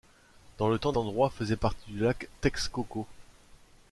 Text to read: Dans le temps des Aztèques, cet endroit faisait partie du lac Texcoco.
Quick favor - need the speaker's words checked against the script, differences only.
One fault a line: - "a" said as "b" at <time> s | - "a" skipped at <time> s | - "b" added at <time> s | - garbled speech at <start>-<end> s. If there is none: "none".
- "des Aztèques cet" skipped at 0.9 s